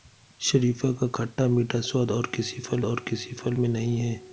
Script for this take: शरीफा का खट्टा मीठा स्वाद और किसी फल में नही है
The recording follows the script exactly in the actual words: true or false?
false